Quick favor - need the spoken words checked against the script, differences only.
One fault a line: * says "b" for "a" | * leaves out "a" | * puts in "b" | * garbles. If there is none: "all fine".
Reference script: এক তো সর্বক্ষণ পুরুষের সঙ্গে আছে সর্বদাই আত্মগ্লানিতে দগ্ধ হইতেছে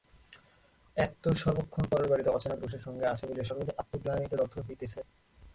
* puts in "পরের বাড়িতে অচেনা"
* puts in "বলিয়া"